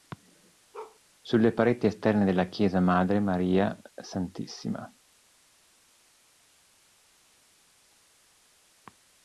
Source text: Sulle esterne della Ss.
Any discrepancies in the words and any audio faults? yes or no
yes